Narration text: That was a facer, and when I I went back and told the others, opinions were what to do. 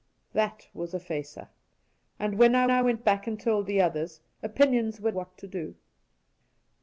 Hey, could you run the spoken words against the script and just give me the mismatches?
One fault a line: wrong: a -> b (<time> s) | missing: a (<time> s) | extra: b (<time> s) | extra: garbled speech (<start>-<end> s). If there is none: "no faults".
no faults